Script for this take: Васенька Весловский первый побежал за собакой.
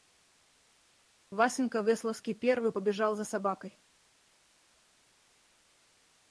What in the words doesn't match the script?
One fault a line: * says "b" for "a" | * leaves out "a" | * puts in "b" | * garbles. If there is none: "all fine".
all fine